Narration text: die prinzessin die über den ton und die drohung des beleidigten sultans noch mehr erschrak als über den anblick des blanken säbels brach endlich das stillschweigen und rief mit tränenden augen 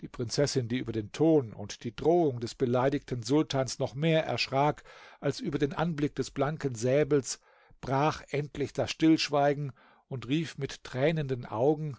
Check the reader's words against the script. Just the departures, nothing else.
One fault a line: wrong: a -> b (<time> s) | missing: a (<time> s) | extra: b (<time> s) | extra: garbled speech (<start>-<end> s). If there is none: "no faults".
no faults